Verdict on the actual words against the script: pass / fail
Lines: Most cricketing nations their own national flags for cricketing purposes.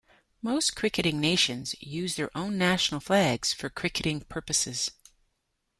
fail